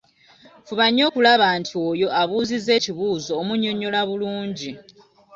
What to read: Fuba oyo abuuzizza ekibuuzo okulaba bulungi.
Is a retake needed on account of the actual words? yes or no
yes